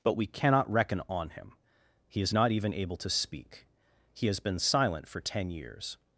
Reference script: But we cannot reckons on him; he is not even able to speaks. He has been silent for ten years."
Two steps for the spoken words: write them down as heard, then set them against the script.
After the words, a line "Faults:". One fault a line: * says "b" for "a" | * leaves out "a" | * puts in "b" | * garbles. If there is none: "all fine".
But we cannot reckon on him; he is not even able to speak. He has been silent for ten years."
Faults:
* says "reckon" for "reckons"
* says "speak" for "speaks"